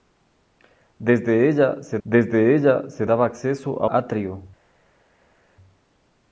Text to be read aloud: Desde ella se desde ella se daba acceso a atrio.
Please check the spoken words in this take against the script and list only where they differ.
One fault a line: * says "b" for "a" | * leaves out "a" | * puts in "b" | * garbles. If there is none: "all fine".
all fine